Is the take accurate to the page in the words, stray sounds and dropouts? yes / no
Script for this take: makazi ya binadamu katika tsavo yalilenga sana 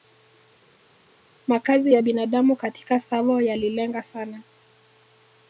yes